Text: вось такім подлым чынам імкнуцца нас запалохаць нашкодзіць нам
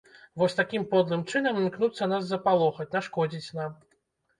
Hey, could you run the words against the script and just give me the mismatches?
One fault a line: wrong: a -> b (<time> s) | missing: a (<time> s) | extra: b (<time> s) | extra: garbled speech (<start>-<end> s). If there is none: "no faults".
no faults